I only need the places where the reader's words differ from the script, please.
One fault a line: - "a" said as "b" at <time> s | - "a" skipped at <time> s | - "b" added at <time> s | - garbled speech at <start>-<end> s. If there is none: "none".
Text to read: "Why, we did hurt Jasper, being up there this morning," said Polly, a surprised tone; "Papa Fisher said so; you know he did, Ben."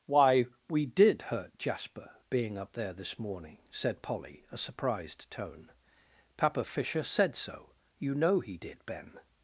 none